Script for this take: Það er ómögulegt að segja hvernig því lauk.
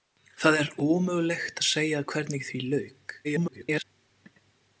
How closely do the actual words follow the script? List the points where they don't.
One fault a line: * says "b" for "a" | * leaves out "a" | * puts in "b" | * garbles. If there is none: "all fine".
* garbles